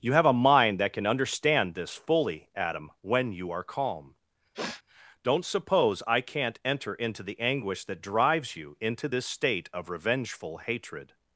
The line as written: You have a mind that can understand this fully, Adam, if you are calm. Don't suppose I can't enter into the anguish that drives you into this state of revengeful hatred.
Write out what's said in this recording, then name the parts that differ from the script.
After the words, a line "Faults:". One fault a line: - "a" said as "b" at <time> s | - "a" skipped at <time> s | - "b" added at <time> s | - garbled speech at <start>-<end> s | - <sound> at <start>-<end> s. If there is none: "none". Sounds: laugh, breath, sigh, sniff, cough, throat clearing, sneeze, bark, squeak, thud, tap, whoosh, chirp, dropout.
You have a mind that can understand this fully, Adam, when you are calm. Don't suppose I can't enter into the anguish that drives you into this state of revengeful hatred.
Faults:
- "if" said as "when" at 3.0 s
- sniff at 4.5-4.8 s